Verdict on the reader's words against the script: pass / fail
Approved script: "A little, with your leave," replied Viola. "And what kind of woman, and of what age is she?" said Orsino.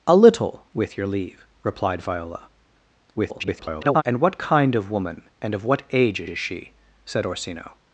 fail